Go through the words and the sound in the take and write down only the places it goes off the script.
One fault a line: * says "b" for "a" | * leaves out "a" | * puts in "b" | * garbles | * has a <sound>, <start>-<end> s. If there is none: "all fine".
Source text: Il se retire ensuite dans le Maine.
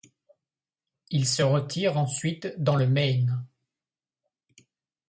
all fine